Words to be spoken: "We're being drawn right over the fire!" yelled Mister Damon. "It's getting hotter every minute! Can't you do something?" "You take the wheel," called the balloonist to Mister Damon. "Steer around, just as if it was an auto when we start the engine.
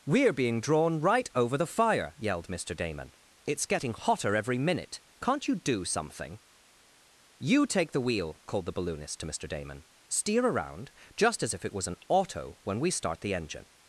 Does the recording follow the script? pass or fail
pass